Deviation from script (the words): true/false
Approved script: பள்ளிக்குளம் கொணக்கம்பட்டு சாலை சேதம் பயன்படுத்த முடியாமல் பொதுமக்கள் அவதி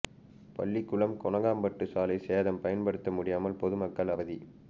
false